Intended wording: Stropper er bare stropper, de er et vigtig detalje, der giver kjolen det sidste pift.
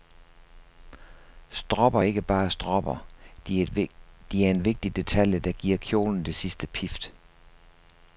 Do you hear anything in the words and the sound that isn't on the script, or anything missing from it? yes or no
yes